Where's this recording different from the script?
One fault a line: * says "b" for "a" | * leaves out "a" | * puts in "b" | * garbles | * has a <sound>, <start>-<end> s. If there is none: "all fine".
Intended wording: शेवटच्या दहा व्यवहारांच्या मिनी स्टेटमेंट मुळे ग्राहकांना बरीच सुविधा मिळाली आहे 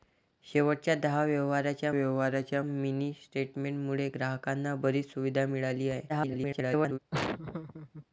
* puts in "व्यवहारांच्या"
* garbles
* has a laugh, 7.1-8.1 s